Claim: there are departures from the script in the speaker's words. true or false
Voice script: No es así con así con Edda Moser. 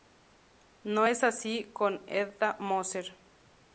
true